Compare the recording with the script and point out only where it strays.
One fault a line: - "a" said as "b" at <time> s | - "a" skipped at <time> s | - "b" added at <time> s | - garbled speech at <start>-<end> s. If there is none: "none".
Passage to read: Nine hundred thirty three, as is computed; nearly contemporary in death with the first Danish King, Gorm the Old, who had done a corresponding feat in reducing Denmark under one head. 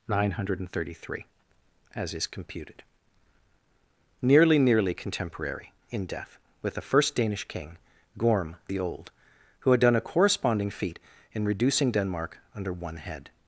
- "nearly" added at 4.6 s